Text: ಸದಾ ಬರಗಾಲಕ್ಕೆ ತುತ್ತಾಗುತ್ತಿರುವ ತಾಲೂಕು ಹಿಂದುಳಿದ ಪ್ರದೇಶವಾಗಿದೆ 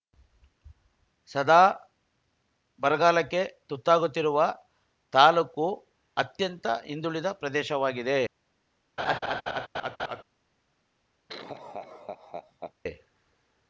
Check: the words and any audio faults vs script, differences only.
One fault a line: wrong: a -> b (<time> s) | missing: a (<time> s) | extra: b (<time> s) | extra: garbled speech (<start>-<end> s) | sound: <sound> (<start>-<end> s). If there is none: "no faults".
extra: ಅತ್ಯಂತ (6.2 s)
sound: laugh (9.0-10.2 s)
sound: laugh (11.3-12.7 s)